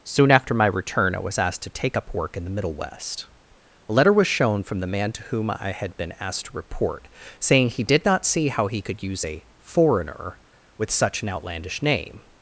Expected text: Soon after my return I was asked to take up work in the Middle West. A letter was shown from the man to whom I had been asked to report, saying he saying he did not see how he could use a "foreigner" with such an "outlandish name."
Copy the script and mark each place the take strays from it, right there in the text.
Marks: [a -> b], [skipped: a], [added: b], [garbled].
Soon after my return I was asked to take up work in the Middle West. A letter was shown from the man to whom I had been asked to report, saying he [skipped: saying he] did not see how he could use a "foreigner" with such an "outlandish name."